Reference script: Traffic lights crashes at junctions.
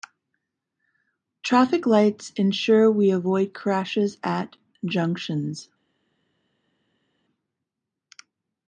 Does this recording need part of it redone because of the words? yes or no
yes